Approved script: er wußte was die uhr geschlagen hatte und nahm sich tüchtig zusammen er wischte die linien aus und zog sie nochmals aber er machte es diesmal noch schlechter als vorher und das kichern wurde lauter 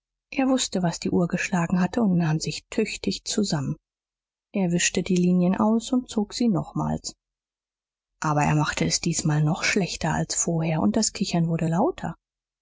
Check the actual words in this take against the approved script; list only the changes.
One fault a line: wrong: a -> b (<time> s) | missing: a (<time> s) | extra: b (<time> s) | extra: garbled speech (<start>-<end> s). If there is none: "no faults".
no faults